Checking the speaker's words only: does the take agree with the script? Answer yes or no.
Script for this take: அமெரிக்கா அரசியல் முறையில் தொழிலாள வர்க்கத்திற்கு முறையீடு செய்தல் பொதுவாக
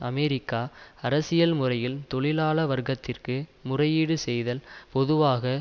yes